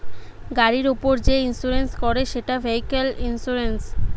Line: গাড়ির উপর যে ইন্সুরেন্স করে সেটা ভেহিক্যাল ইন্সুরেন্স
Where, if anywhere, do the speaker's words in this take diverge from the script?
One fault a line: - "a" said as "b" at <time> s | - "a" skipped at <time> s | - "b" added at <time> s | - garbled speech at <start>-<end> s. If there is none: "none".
none